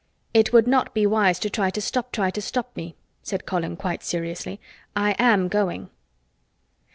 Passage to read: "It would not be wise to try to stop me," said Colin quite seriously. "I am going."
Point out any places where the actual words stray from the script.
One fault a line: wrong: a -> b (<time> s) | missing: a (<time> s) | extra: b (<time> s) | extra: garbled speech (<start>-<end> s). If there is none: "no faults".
extra: try to stop (2.1 s)